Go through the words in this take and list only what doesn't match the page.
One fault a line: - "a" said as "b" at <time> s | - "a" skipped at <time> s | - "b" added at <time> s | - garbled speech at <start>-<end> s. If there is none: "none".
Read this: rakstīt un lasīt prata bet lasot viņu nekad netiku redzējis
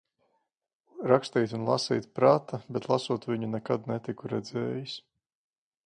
none